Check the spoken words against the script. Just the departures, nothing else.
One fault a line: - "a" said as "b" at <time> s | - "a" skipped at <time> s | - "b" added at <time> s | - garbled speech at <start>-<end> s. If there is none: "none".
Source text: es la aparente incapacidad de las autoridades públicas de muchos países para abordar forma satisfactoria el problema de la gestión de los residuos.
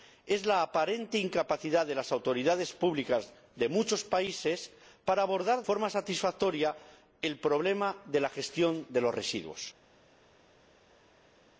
none